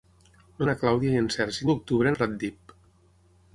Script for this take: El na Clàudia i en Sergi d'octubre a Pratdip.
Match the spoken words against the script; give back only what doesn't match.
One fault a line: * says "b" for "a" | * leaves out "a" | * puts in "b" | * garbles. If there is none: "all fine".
all fine